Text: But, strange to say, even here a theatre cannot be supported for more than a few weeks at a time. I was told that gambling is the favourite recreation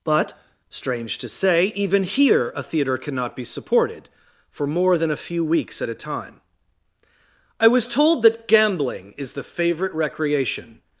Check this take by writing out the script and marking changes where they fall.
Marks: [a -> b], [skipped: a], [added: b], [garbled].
But, strange to say, even here a theatre cannot be supported for more than a few weeks at a time. I was told that gambling is the favourite recreation